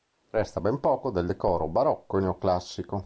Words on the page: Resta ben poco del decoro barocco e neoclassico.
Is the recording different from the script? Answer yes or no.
no